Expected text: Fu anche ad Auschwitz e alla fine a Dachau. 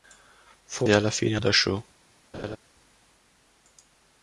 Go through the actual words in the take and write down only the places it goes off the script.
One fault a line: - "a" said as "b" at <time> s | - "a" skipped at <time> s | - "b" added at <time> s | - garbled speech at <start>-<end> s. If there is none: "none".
- "anche ad Auschwitz" skipped at 0.9 s